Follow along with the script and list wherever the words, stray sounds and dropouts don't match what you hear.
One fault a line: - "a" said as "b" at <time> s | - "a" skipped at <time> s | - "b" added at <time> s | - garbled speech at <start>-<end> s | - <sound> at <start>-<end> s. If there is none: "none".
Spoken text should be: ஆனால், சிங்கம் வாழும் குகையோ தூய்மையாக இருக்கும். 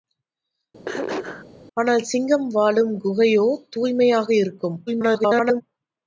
- throat clearing at 0.9-1.5 s
- garbled speech at 4.9-5.6 s